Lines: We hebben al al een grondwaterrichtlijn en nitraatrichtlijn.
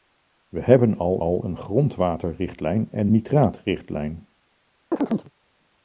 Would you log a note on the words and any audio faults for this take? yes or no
yes